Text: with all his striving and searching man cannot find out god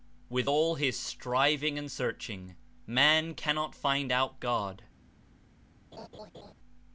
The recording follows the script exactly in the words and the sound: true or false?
false